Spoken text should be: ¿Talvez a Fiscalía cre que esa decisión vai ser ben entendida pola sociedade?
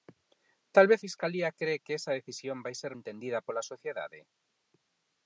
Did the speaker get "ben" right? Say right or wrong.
wrong